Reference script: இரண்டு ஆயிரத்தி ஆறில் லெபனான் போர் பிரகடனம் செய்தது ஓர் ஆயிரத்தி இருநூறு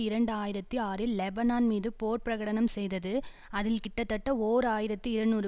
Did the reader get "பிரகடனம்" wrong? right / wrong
right